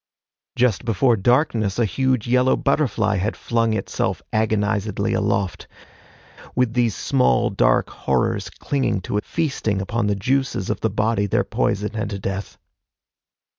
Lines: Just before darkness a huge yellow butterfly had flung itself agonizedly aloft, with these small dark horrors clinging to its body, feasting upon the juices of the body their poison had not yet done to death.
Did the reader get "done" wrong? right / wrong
wrong